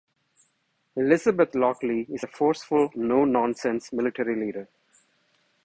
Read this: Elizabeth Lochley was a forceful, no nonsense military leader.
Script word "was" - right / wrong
wrong